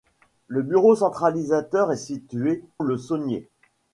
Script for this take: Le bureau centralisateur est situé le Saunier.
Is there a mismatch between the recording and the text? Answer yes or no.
no